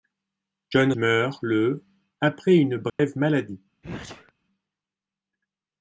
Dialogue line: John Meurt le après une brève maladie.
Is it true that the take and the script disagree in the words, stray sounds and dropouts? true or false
true